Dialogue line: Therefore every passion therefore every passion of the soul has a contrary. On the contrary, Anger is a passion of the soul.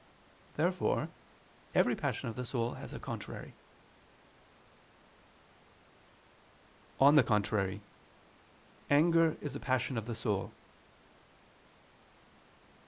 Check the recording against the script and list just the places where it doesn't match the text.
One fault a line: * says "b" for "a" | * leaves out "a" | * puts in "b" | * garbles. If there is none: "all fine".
* leaves out "therefore every passion"